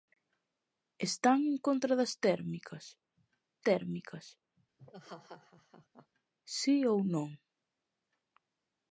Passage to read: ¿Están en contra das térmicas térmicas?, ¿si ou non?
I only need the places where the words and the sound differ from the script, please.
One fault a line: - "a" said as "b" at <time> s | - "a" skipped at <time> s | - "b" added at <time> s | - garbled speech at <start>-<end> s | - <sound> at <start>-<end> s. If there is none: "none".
- laugh at 4.8-6.1 s